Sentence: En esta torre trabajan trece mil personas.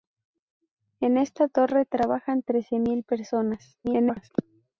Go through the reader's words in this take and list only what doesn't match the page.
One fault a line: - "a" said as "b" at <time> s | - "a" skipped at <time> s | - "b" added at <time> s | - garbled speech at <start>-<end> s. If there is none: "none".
- garbled speech at 3.8-4.3 s